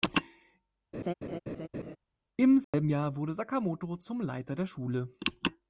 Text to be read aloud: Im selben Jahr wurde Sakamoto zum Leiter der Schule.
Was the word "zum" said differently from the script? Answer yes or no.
no